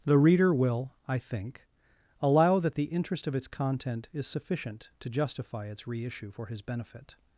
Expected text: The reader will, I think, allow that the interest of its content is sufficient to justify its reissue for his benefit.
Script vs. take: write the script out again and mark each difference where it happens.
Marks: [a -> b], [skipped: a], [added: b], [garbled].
The reader will, I think, allow that the interest of its content is sufficient to justify its reissue for his benefit.